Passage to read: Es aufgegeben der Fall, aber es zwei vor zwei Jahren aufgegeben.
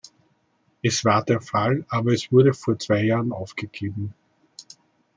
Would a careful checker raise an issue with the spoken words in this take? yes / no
yes